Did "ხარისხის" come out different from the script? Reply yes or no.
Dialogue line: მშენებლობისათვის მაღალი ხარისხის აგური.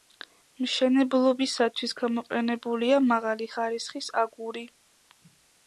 no